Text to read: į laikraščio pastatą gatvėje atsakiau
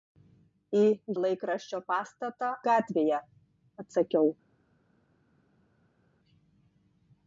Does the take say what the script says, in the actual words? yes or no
yes